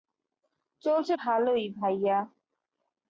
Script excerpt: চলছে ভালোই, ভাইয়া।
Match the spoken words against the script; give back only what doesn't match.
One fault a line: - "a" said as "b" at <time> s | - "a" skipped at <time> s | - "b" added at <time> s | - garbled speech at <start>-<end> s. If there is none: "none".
none